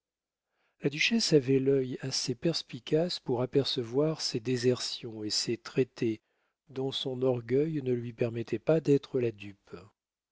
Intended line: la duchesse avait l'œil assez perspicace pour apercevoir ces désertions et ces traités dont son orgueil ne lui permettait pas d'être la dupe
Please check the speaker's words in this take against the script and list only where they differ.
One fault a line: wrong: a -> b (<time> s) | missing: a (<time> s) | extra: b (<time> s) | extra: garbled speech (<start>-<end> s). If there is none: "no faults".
no faults